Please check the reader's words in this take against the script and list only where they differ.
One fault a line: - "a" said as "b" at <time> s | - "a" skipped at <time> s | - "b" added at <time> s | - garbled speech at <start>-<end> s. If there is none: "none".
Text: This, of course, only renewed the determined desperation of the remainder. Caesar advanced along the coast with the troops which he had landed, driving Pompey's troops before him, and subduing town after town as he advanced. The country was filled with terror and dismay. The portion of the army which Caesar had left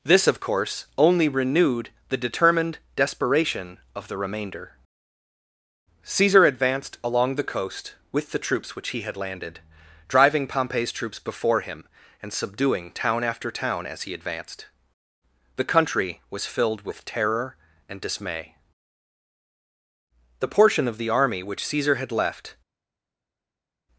none